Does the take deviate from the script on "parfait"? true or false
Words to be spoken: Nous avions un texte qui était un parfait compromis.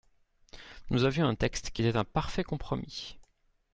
false